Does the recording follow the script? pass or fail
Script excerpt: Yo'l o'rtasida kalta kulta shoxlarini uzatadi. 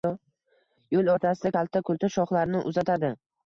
pass